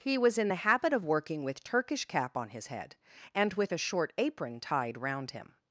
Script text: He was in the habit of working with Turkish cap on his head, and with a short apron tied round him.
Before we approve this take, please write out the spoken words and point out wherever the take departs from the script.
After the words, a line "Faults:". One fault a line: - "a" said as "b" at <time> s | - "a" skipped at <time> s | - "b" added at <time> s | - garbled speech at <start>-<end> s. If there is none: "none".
He was in the habit of working with Turkish cap on his head, and with a short apron tied round him.
Faults:
none